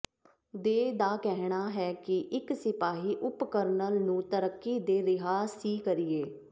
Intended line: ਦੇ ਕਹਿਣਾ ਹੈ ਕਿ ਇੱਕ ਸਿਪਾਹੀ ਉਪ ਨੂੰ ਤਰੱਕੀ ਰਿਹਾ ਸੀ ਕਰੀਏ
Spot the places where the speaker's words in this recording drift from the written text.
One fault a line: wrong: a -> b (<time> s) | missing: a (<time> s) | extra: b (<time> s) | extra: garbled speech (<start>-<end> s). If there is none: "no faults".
extra: ਦਾ (0.9 s)
extra: ਕਰਨਲ (3.5 s)
extra: ਦੇ (4.8 s)